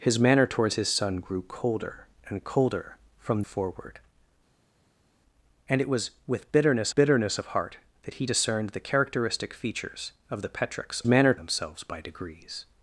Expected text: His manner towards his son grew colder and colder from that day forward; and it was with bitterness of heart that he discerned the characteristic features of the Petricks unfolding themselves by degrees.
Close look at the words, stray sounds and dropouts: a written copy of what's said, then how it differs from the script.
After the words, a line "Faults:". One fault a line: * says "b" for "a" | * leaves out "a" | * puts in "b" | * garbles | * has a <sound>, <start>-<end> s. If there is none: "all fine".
His manner towards his son grew colder and colder from forward; and it was with bitterness bitterness of heart that he discerned the characteristic features of the Petricks manner themselves by degrees.
Faults:
* leaves out "that day"
* puts in "bitterness"
* says "manner" for "unfolding"